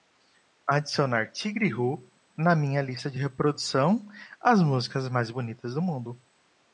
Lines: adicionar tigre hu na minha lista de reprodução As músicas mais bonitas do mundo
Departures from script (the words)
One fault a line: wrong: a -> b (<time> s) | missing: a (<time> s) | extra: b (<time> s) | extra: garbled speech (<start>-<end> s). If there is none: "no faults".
no faults